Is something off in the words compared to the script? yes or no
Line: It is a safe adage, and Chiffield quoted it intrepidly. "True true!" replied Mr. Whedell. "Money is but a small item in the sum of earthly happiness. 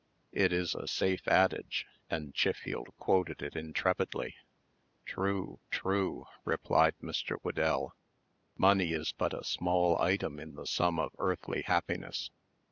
no